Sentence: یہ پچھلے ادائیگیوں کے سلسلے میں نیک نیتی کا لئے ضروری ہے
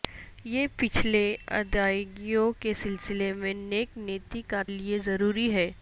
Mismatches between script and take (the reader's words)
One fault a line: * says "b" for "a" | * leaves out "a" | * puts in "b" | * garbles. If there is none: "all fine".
all fine